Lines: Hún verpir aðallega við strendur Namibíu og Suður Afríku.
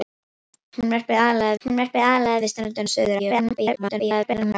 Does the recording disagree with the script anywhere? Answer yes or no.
yes